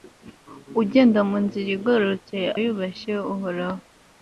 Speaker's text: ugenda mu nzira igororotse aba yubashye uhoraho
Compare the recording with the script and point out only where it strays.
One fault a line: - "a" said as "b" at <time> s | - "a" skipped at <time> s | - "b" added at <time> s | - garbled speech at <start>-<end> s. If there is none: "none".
- "aba" skipped at 2.4 s